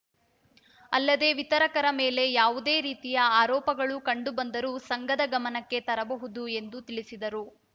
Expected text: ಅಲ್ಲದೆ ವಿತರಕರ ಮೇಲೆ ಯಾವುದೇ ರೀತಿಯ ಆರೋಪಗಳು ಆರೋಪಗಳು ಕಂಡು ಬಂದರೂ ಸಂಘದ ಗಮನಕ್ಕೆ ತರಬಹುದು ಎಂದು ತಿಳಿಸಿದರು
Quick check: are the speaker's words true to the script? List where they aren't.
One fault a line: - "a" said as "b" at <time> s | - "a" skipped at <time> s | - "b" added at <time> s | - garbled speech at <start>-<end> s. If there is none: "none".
- "ಆರೋಪಗಳು" skipped at 4.0 s